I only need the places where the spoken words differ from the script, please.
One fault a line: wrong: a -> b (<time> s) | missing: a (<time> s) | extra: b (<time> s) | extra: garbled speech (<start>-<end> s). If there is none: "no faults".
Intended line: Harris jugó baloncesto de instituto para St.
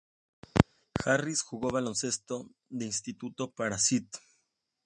no faults